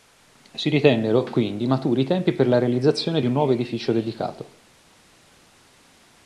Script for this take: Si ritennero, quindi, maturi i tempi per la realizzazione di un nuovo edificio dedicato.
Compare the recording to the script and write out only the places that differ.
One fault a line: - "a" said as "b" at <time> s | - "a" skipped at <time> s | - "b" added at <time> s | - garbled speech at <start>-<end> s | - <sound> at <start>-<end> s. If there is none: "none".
none